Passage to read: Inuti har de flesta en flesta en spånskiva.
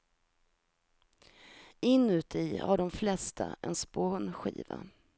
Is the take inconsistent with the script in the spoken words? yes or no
yes